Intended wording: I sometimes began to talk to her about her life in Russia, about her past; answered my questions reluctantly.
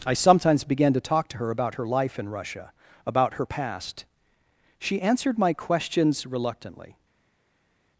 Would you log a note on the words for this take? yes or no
yes